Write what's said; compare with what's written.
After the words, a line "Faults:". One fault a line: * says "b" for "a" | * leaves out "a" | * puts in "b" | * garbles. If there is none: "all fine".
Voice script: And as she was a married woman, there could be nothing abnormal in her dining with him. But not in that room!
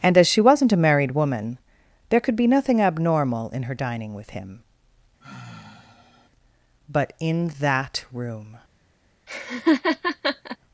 And as she wasn't a married woman, there could be nothing abnormal in her dining with him. But in that room!
Faults:
* says "wasn't" for "was"
* leaves out "not"